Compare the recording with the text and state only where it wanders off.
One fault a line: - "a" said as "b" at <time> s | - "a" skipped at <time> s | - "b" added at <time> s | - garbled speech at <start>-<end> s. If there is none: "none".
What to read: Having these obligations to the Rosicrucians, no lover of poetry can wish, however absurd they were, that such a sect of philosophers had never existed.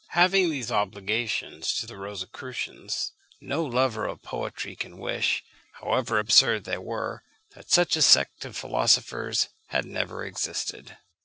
none